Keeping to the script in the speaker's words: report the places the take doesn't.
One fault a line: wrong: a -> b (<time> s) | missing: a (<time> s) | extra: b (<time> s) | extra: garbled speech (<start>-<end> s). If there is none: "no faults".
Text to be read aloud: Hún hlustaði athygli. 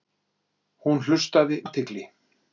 no faults